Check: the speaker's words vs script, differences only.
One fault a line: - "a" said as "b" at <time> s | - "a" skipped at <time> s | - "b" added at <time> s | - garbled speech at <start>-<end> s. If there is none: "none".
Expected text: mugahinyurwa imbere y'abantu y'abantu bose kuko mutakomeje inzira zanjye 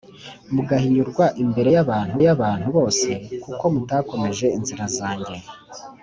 none